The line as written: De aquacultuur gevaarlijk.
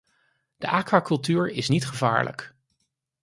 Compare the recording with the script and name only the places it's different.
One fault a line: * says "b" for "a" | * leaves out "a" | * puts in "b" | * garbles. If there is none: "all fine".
* puts in "is niet"